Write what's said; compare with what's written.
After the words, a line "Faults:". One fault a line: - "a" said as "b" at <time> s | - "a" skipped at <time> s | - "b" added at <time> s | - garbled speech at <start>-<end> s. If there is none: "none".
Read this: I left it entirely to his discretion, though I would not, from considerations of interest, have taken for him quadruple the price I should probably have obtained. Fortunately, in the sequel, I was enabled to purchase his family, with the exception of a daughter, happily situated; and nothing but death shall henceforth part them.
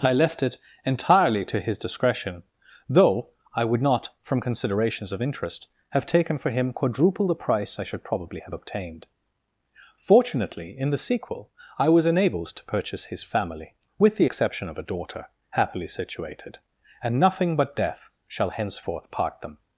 I left it entirely to his discretion, though I would not, from considerations of interest, have taken for him quadruple the price I should probably have obtained. Fortunately, in the sequel, I was enabled to purchase his family, with the exception of a daughter, happily situated; and nothing but death shall henceforth part them.
Faults:
none